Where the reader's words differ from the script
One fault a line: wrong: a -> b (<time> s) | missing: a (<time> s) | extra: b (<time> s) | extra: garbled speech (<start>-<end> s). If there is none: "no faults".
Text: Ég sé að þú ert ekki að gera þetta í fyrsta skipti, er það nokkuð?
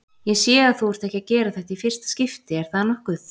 no faults